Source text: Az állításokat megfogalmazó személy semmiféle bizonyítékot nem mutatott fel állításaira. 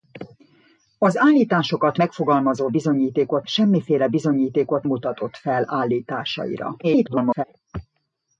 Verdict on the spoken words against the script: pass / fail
fail